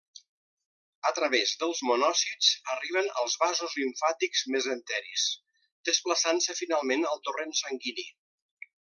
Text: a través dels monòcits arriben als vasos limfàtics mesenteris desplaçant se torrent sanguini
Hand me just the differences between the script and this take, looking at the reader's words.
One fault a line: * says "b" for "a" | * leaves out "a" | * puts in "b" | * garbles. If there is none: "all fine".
* puts in "finalment al"